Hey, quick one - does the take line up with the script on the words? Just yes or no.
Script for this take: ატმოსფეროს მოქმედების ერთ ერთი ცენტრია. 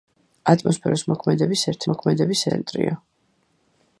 no